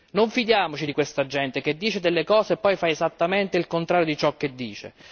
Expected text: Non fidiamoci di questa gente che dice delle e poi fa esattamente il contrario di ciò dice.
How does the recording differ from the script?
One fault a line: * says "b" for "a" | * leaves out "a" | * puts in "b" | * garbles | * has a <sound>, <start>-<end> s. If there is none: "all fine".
* puts in "cose"
* puts in "che"